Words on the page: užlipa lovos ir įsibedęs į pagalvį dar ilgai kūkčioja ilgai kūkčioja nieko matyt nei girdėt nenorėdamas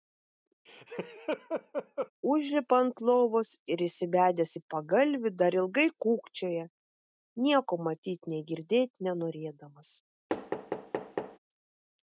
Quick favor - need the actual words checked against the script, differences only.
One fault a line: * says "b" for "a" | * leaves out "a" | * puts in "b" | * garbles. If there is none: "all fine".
* puts in "ant"
* leaves out "ilgai kūkčioja"